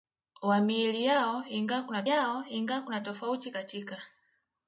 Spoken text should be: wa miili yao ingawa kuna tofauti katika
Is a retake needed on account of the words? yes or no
yes